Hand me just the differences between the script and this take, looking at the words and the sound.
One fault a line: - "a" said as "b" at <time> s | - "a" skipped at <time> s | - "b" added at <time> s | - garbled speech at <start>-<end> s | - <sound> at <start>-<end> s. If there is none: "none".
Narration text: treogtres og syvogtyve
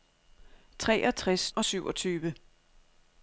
none